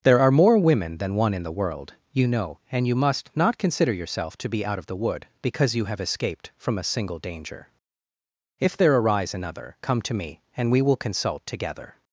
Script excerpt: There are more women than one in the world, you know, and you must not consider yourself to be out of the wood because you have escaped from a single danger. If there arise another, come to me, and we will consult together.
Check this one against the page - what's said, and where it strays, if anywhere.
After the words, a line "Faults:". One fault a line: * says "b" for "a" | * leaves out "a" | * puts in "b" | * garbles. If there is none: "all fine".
There are more women than one in the world, you know, and you must not consider yourself to be out of the wood because you have escaped from a single danger. If there arise another, come to me, and we will consult together.
Faults:
all fine